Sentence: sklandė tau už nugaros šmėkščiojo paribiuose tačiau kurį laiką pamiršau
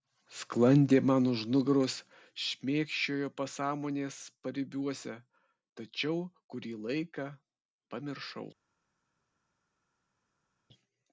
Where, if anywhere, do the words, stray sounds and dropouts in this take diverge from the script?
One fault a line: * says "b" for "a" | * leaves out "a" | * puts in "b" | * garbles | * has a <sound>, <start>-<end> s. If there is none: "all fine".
* says "man" for "tau"
* puts in "pasąmonės"